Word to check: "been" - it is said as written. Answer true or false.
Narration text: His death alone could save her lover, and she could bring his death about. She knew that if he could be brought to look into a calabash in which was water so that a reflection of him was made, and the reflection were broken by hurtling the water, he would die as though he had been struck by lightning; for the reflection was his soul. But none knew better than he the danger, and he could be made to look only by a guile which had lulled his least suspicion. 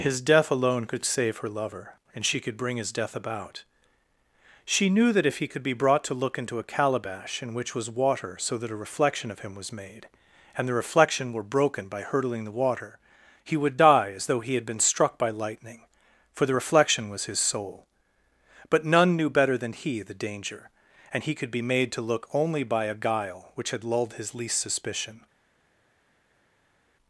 true